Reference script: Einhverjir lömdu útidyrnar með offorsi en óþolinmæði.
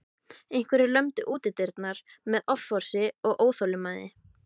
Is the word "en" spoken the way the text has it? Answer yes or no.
no